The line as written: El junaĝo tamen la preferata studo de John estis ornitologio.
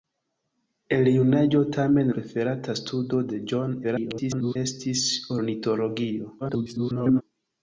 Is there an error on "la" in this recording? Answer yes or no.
yes